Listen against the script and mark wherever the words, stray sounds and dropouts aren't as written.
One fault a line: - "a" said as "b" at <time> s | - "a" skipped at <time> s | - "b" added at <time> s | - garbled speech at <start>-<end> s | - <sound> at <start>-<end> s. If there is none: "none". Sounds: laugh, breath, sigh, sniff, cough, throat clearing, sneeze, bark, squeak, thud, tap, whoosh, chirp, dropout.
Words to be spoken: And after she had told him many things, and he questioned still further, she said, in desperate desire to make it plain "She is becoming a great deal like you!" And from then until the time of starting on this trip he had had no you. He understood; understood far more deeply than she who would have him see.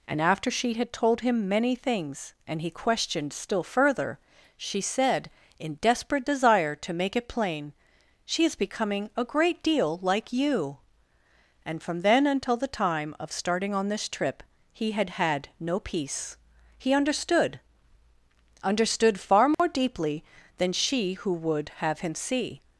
- "you" said as "peace" at 15.8 s
- dropout at 19.5-19.6 s